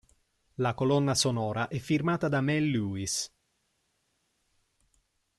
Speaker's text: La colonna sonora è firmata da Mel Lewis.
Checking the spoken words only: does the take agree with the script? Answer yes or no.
yes